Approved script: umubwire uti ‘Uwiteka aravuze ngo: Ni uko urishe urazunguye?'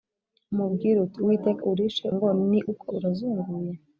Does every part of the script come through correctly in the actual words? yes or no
no